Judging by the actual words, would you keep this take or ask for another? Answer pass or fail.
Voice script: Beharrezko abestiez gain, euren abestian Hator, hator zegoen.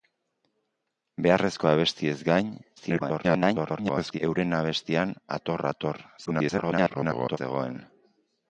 fail